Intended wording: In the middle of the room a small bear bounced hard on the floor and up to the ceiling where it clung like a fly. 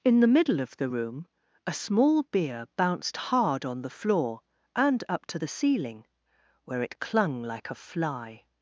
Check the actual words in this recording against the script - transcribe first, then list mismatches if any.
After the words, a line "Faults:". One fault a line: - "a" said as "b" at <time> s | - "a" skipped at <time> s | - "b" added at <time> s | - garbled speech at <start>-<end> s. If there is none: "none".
In the middle of the room a small beer bounced hard on the floor and up to the ceiling where it clung like a fly.
Faults:
- "bear" said as "beer" at 2.2 s